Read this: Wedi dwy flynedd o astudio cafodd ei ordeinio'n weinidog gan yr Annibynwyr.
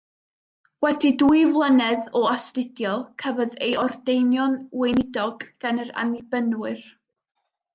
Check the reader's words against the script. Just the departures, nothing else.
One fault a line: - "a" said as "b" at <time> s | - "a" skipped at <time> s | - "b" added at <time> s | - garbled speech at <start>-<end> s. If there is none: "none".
none